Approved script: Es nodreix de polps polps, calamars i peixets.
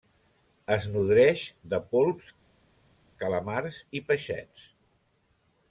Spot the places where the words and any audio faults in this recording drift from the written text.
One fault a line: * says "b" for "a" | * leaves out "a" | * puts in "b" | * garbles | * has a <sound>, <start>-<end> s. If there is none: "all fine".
* leaves out "polps"